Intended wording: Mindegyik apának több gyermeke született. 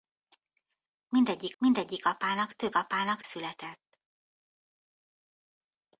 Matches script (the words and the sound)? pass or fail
fail